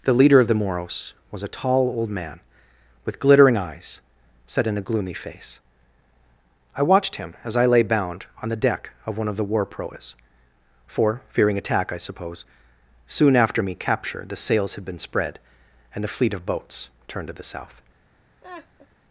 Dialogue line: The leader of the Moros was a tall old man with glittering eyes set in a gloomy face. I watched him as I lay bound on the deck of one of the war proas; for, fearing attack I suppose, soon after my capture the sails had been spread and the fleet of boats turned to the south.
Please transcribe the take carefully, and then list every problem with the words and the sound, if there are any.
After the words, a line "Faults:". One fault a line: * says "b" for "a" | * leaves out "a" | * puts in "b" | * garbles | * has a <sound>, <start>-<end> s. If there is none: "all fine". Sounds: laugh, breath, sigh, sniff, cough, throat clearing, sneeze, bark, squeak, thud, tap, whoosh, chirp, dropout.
The leader of the Moros was a tall old man with glittering eyes set in a gloomy face. I watched him as I lay bound on the deck of one of the war proas; for, fearing attack I suppose, soon after me capture the sails had been spread and the fleet of boats turned to the south.
Faults:
* says "me" for "my"
* has a laugh, 18.4-18.9 s